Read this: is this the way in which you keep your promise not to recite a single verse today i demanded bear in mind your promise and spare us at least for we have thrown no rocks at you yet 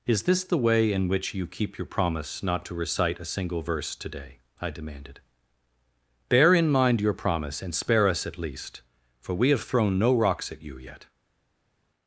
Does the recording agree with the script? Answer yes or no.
yes